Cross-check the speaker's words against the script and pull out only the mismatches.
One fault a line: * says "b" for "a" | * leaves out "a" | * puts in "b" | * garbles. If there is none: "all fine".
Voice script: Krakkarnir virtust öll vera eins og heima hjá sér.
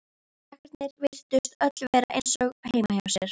all fine